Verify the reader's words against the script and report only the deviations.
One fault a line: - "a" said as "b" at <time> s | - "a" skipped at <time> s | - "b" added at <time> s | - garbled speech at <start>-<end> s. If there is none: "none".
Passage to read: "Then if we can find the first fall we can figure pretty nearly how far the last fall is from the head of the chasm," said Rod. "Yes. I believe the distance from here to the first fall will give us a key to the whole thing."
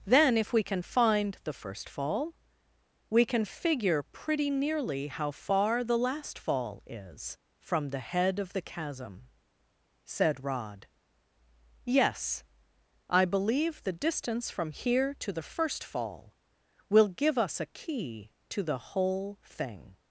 none